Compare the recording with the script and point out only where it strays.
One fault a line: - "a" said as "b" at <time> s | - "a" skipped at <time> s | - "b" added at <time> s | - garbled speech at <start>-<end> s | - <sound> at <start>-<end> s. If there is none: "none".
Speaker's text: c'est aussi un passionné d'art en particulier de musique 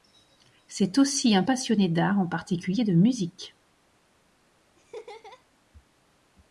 - laugh at 4.8-5.4 s